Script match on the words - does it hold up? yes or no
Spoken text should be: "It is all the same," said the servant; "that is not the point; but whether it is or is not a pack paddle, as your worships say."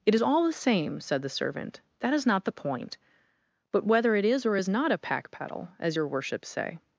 yes